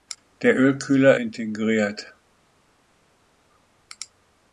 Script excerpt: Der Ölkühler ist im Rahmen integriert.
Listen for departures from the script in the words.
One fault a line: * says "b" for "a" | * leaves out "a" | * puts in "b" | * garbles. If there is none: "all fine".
* leaves out "ist im Rahmen"